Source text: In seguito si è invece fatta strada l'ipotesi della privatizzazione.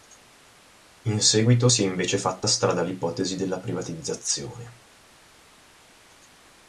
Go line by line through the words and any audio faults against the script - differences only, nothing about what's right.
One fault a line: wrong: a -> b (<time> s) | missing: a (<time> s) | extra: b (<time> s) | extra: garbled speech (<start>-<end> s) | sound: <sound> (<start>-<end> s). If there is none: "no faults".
no faults